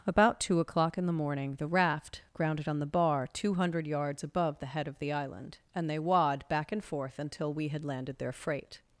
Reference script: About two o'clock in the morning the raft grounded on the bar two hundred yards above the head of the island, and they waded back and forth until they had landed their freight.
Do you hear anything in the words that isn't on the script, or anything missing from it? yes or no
yes